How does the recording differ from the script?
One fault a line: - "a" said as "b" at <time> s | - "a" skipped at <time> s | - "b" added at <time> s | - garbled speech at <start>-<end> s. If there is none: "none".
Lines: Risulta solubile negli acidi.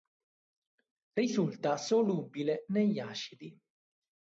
none